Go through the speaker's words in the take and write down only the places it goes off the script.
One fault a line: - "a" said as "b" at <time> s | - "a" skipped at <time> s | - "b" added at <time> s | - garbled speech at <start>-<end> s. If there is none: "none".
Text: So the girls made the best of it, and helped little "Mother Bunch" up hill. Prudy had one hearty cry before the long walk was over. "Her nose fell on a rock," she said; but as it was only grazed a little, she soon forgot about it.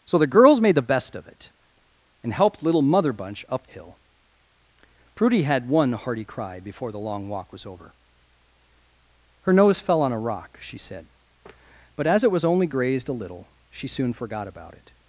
none